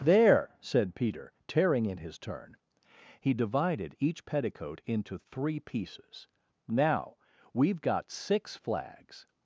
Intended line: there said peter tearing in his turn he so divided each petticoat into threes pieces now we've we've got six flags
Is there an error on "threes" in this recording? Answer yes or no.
yes